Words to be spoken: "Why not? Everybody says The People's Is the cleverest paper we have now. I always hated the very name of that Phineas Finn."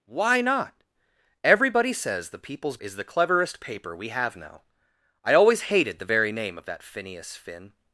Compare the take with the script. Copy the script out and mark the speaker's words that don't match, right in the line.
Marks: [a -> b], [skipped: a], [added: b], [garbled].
"Why not? Everybody says The People's Is the cleverest paper we have now. I always hated the very name of that Phineas Finn."